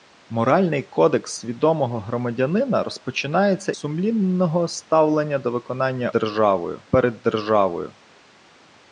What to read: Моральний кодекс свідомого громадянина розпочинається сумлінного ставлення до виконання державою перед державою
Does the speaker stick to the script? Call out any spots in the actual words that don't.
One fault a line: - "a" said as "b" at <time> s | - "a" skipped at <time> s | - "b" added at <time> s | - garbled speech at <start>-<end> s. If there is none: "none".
none